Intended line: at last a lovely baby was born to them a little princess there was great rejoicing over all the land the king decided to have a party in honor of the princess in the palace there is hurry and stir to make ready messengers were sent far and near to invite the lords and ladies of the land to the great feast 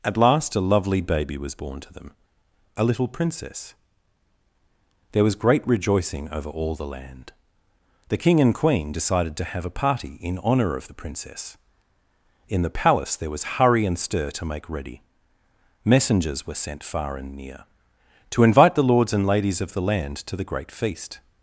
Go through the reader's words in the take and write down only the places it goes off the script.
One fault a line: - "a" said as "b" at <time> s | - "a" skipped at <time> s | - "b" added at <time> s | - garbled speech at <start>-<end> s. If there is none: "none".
- "and queen" added at 8.4 s
- "is" said as "was" at 13.3 s